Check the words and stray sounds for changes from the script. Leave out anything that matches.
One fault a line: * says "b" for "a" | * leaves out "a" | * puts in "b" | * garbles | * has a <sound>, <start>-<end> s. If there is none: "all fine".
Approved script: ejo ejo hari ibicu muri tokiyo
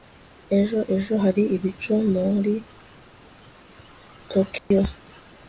* has a dropout, 4.6-4.7 s